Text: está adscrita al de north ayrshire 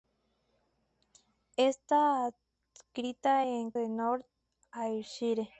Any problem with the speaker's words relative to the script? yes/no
no